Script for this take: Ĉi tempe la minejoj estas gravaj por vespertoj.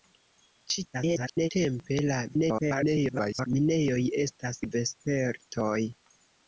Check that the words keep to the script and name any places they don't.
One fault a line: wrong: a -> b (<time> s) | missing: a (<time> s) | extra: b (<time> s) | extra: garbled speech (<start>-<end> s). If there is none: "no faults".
extra: garbled speech (0.9-1.5 s)
extra: garbled speech (2.3-3.5 s)
missing: gravaj por (4.6 s)